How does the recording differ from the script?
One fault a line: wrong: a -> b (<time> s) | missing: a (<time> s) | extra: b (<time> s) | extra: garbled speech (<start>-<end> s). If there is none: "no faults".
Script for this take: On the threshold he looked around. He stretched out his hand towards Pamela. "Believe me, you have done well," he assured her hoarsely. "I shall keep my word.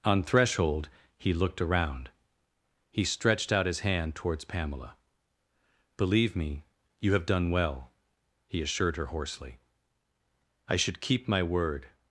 missing: the (0.2 s)
wrong: shall -> should (10.8 s)